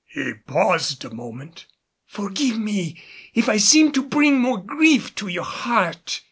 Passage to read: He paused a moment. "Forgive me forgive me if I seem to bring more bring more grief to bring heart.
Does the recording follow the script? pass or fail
fail